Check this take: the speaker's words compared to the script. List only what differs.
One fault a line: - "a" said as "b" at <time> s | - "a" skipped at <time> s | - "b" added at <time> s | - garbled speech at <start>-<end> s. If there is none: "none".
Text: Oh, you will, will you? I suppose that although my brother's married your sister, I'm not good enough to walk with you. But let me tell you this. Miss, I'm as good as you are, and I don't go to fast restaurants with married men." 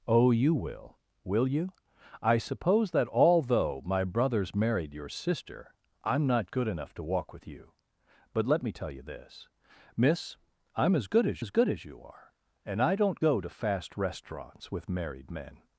- "as good as" added at 11.4 s